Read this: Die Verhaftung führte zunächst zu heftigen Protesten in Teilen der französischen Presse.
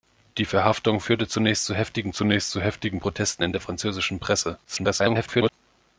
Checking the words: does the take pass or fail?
fail